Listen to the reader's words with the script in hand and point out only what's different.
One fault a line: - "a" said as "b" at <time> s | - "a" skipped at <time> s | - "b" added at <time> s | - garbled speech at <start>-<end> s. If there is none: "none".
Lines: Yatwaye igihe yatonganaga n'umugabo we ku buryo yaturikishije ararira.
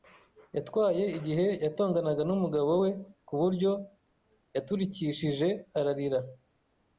none